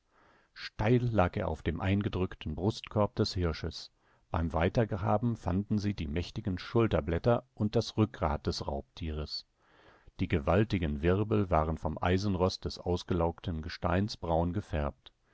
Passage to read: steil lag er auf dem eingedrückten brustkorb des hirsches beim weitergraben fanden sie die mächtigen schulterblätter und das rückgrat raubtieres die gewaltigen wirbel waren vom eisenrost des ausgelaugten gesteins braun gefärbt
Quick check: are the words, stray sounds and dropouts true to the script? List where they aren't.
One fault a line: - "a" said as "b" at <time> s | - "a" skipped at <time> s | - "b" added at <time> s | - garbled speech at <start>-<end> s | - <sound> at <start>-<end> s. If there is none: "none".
- "des" added at 8.5 s